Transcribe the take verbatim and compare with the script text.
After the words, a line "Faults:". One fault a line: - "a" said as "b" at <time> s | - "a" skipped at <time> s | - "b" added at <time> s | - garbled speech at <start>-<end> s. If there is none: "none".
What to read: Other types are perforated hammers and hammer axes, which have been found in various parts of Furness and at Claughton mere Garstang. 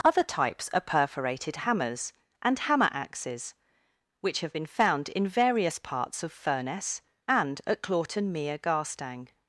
Other types are perforated hammers and hammer axes, which have been found in various parts of Furness and at Claughton mere Garstang.
Faults:
none